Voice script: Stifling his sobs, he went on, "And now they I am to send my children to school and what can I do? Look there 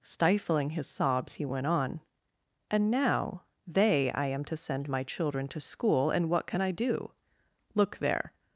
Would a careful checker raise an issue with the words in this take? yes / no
no